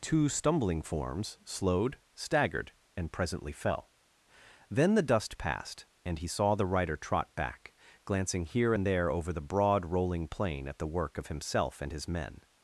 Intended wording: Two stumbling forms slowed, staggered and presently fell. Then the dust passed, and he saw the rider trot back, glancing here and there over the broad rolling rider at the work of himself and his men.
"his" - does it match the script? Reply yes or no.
yes